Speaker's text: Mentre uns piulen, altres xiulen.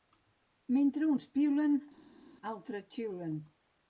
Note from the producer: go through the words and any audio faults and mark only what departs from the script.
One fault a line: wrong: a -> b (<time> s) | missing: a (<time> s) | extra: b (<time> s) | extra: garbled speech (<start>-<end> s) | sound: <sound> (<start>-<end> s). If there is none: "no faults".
no faults